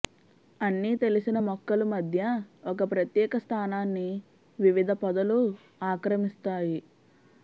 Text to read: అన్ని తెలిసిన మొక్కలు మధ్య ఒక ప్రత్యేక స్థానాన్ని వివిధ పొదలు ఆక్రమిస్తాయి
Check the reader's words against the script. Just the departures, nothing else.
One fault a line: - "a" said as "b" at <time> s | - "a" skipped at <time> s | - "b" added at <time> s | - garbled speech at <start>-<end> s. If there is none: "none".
none